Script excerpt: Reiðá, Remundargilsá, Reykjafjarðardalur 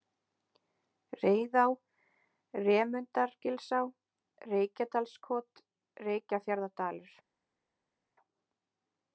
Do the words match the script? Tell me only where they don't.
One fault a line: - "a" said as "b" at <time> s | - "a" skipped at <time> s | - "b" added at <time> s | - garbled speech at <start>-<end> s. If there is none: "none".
- "Reykjadalskot" added at 4.5 s